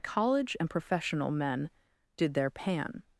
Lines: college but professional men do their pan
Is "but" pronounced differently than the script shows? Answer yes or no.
yes